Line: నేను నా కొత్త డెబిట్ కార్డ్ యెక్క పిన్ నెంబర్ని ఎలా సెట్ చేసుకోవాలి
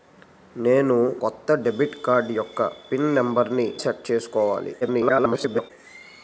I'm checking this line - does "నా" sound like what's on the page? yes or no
no